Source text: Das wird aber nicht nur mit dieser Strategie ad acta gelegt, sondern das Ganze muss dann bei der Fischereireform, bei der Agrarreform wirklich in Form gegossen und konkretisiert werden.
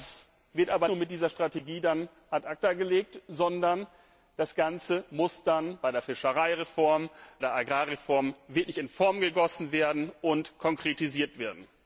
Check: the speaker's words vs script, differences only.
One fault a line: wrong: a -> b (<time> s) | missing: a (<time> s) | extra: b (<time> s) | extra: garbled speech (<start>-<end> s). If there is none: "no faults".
missing: nicht (0.9 s)
missing: bei (7.1 s)